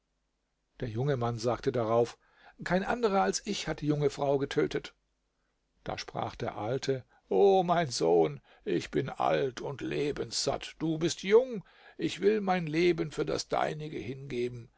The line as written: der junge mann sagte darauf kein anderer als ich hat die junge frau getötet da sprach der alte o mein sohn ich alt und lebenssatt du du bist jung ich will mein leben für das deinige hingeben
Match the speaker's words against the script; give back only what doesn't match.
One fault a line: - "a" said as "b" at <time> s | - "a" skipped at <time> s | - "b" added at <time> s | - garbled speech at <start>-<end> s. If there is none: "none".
- "bin" added at 8.9 s
- "du" skipped at 11.0 s